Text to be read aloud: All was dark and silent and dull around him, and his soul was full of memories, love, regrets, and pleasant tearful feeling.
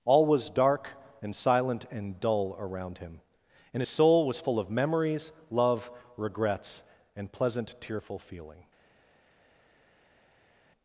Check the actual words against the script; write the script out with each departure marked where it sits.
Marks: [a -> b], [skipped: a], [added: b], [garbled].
All was dark and silent and dull around him, and his soul was full of memories, love, regrets, and pleasant tearful feeling.